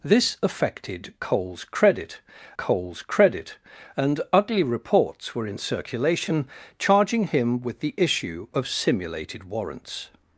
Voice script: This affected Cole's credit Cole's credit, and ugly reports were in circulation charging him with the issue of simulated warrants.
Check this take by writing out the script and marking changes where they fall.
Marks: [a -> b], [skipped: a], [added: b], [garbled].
This affected Cole's credit Cole's credit, and ugly reports were in circulation charging him with the issue of simulated warrants.